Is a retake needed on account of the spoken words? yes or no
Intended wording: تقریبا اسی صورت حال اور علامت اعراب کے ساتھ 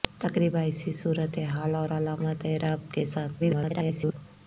yes